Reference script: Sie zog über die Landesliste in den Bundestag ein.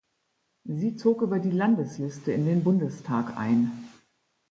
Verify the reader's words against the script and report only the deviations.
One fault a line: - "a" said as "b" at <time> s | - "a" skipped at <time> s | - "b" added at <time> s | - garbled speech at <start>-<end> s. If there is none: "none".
none